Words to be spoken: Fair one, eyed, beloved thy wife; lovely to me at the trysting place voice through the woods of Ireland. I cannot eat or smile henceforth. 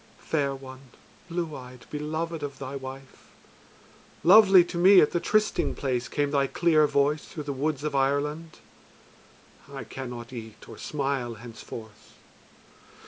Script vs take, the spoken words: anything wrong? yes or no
yes